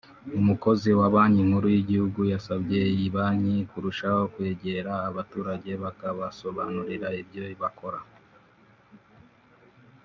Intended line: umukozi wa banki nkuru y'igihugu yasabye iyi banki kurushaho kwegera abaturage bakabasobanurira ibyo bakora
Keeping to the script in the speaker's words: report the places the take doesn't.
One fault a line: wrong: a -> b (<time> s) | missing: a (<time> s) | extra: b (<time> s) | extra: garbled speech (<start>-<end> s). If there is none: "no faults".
no faults